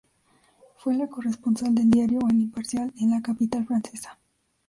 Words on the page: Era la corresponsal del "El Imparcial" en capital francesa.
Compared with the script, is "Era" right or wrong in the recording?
wrong